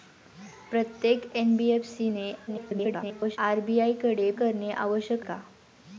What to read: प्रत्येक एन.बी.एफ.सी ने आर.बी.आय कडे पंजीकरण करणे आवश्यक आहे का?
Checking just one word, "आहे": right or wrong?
wrong